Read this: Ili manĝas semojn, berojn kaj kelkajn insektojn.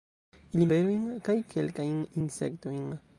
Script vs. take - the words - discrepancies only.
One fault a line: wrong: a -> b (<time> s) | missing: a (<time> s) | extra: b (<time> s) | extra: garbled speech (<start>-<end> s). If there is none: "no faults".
missing: manĝas semojn (0.7 s)